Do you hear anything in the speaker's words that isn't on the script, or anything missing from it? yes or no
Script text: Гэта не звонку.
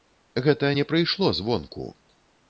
yes